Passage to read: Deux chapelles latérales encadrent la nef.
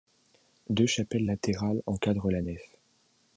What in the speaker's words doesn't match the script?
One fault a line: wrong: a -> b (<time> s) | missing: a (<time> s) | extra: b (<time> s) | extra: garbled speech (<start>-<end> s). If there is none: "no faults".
no faults